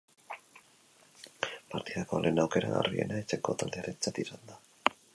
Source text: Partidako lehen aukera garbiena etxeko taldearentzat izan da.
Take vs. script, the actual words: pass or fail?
pass